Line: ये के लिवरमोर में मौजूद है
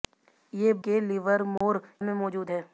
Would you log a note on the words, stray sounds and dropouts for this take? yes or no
yes